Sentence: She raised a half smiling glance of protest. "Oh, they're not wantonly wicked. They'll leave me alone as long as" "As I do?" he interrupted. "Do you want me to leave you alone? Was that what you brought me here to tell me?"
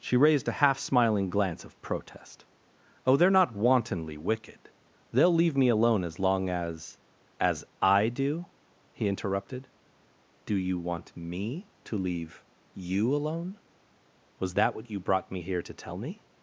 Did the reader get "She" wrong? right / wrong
right